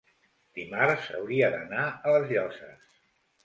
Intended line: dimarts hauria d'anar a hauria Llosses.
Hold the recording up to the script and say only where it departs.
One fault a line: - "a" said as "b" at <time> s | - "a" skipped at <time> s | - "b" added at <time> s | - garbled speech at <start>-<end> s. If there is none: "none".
- "hauria" said as "les" at 2.2 s